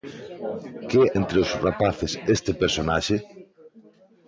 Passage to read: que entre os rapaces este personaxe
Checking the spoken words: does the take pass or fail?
pass